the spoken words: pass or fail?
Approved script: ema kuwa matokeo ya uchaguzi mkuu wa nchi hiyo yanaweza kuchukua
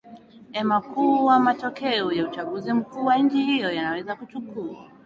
pass